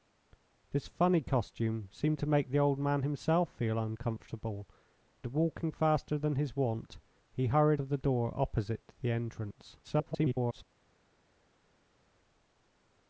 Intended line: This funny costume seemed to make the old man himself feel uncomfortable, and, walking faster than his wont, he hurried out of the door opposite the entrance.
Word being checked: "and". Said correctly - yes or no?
no